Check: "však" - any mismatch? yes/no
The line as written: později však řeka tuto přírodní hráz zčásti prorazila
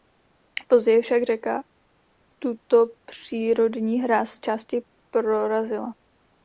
no